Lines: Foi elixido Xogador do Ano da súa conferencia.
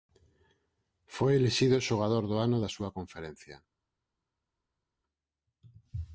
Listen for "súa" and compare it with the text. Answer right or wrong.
right